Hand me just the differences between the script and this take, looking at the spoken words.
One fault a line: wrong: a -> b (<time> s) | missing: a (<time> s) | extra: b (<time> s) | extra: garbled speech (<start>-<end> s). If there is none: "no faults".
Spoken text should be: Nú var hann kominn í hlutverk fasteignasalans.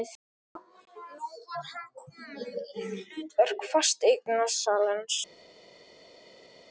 no faults